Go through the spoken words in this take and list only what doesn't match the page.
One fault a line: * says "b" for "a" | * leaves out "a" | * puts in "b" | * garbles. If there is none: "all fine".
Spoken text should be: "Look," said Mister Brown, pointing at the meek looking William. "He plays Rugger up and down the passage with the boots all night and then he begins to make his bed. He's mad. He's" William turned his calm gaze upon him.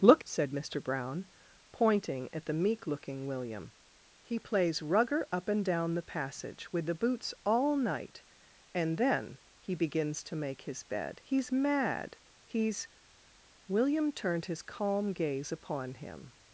all fine